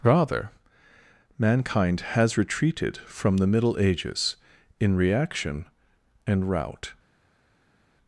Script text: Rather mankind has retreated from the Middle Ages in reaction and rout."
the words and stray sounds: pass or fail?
pass